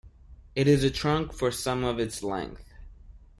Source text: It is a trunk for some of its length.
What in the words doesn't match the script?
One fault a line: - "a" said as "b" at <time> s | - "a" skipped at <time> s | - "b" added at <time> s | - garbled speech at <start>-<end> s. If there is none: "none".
none